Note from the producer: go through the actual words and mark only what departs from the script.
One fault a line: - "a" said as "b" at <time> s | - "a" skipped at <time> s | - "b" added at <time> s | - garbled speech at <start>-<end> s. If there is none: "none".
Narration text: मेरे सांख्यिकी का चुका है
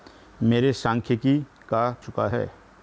none